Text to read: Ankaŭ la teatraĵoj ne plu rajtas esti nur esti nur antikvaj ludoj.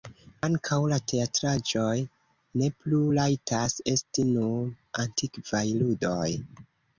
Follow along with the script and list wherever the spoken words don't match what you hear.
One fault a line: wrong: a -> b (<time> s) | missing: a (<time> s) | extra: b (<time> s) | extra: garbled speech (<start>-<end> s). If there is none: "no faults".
missing: esti nur (4.7 s)